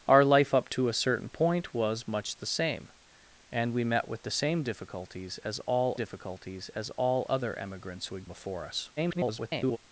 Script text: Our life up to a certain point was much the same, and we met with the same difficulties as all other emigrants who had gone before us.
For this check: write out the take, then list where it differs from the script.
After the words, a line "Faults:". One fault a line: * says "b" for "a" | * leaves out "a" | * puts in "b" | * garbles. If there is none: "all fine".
Our life up to a certain point was much the same, and we met with the same difficulties as all difficulties as all other emigrants who had before us. [garbled]
Faults:
* puts in "difficulties as all"
* leaves out "gone"
* garbles